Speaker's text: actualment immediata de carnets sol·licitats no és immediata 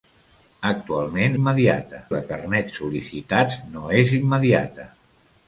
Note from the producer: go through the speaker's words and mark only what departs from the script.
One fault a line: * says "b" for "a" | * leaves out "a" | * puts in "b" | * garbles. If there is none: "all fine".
all fine